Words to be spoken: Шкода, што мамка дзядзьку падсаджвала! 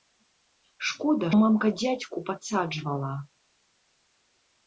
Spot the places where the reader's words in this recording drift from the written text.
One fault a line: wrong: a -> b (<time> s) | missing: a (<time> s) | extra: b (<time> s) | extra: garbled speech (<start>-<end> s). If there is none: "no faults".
missing: што (1.3 s)